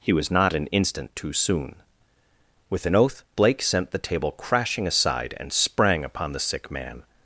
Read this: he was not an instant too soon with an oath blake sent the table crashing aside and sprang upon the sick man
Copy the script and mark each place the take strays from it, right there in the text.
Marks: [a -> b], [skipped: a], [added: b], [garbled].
he was not an instant too soon with an oath blake sent the table crashing aside and sprang upon the sick man